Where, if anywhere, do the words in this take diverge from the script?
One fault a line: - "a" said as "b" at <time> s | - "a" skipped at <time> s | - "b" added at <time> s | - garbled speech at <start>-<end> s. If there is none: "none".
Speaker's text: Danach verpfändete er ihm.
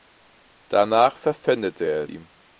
none